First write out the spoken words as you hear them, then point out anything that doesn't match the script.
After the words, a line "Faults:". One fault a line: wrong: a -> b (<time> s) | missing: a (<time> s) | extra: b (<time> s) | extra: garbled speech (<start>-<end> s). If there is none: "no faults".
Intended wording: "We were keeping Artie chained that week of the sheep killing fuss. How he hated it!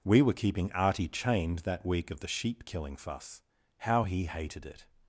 "We were keeping Artie chained that week of the sheep killing fuss. How he hated it!
Faults:
no faults